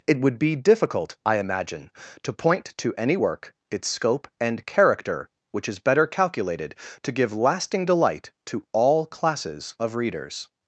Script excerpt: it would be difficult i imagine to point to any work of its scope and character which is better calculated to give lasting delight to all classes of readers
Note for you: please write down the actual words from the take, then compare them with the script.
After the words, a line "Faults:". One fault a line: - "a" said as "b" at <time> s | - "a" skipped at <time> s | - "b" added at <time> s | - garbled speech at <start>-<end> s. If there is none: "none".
it would be difficult i imagine to point to any work its scope and character which is better calculated to give lasting delight to all classes of readers
Faults:
- "of" skipped at 3.5 s